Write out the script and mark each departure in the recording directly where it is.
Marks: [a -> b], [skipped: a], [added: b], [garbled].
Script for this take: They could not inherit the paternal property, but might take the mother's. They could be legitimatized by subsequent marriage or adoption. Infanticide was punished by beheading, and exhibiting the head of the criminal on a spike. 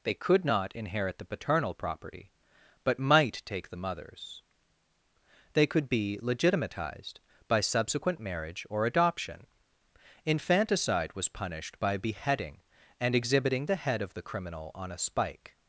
They could not inherit the paternal property, but might take the mother's. They could be legitimatized by subsequent marriage or adoption. Infanticide was punished by beheading, and exhibiting the head of the criminal on a spike.